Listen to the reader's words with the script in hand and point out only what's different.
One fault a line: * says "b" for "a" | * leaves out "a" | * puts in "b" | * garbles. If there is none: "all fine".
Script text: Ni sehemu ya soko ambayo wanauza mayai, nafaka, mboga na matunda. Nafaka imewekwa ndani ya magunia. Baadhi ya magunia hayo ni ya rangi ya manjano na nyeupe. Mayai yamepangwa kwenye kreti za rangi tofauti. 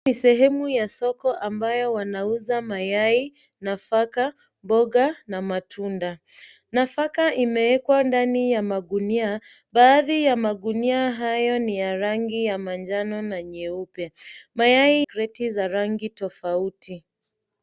* leaves out "yamepangwa kwenye"